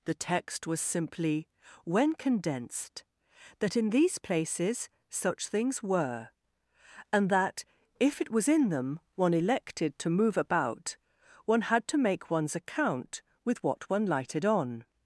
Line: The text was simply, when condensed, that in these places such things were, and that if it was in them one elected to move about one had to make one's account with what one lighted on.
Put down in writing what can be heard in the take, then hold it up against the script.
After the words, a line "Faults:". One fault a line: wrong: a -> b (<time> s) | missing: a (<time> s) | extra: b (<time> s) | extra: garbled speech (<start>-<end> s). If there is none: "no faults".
The text was simply, when condensed, that in these places such things were, and that if it was in them one elected to move about one had to make one's account with what one lighted on.
Faults:
no faults